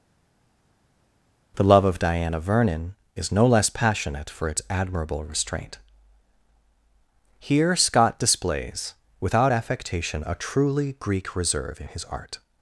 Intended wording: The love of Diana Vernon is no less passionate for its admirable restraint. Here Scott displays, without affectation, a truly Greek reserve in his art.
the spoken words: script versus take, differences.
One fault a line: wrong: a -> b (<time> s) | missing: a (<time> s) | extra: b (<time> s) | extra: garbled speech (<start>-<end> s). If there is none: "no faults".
no faults